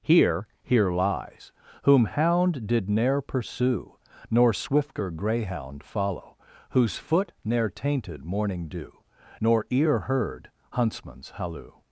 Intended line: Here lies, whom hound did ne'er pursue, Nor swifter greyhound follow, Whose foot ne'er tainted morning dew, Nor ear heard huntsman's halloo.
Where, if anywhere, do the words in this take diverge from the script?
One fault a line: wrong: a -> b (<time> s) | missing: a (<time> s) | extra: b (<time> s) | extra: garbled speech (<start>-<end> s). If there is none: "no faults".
extra: here (0.6 s)